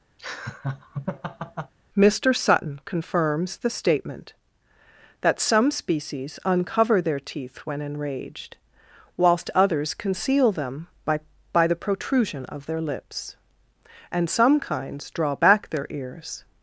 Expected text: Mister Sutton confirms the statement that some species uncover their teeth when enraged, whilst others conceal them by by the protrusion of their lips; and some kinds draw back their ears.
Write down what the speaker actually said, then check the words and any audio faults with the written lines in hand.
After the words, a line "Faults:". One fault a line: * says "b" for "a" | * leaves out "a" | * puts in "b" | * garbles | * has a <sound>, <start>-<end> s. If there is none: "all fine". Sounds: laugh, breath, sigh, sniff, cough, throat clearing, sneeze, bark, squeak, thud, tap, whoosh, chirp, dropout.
Mister Sutton confirms the statement that some species uncover their teeth when enraged, whilst others conceal them by by the protrusion of their lips; and some kinds draw back their ears.
Faults:
* has a laugh, 0.2-1.7 s